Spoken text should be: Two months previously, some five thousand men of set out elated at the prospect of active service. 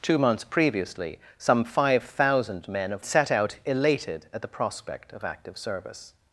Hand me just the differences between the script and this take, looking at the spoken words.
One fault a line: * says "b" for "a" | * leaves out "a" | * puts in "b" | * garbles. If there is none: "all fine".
all fine